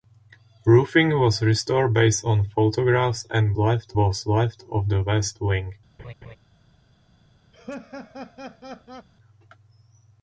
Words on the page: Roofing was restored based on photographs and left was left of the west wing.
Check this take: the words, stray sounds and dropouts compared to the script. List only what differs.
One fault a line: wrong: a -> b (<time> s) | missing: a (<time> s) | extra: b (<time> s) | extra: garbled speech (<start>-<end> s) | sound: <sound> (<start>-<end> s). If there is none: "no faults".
sound: laugh (6.0-6.4 s)
sound: laugh (7.5-9.1 s)